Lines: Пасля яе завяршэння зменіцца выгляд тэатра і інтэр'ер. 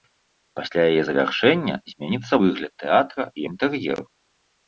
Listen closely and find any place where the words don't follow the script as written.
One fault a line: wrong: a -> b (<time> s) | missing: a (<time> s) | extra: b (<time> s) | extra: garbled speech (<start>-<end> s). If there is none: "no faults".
no faults